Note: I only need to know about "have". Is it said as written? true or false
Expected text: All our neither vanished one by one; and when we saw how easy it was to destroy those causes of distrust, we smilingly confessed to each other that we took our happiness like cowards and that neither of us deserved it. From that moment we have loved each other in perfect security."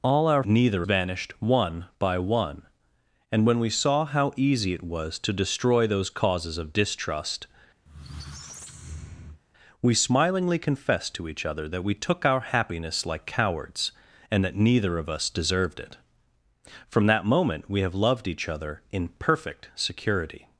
true